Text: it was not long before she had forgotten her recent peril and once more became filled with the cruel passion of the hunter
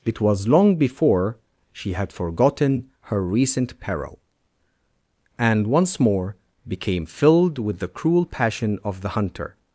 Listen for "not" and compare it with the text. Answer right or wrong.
wrong